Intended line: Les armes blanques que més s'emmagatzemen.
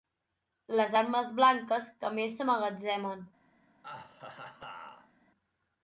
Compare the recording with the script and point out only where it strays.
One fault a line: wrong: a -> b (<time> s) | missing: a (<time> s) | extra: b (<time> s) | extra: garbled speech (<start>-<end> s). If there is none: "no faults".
no faults